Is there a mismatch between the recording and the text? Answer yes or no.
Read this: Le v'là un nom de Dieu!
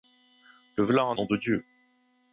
no